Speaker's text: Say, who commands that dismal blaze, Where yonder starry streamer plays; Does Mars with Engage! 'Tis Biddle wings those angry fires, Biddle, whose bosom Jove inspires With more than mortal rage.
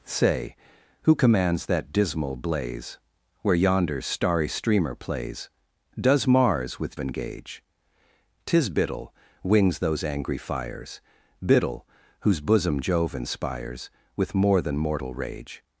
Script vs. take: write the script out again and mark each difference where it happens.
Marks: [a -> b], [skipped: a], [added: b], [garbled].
Say, who commands that dismal blaze, Where yonder starry streamer plays; Does Mars with Engage! 'Tis Biddle wings those angry fires, Biddle, whose bosom Jove inspires With more than mortal rage.